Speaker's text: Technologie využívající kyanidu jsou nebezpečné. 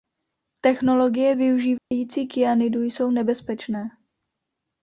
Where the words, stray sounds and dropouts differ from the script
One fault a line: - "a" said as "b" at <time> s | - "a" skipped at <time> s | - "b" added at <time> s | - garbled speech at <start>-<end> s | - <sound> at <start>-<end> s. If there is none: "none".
- dropout at 1.8-1.9 s